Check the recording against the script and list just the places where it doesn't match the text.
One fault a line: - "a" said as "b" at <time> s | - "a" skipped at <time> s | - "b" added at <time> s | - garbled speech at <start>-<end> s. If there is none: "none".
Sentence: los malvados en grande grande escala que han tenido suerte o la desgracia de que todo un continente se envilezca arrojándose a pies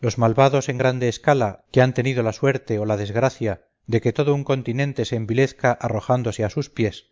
- "grande" skipped at 1.1 s
- "la" added at 2.2 s
- "sus" added at 6.5 s